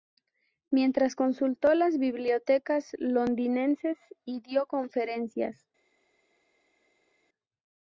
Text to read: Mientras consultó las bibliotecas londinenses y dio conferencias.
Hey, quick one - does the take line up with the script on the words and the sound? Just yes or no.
yes